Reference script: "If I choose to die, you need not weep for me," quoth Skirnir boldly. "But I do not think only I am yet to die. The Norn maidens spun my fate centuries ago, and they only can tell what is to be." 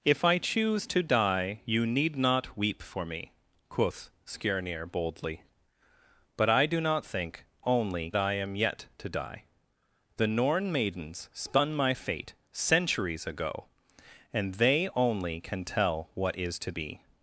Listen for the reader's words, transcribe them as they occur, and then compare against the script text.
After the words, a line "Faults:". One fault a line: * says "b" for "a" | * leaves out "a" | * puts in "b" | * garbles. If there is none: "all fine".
"If I choose to die, you need not weep for me," quoth Skirnir boldly. "But I do not think only I am yet to die. The Norn maidens spun my fate centuries ago, and they only can tell what is to be."
Faults:
all fine